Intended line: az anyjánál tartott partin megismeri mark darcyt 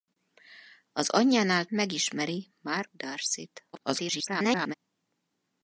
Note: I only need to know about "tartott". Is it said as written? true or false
false